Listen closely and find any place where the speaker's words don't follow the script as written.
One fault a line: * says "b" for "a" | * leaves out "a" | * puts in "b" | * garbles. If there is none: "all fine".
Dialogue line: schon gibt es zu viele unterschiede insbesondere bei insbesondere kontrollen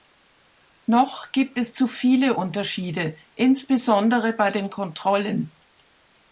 * says "noch" for "schon"
* says "den" for "insbesondere"